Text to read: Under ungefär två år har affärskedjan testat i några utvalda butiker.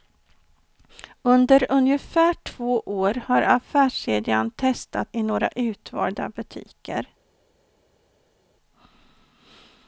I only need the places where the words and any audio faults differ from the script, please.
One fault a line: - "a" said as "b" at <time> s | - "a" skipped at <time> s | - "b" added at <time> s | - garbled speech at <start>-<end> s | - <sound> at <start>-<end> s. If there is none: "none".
none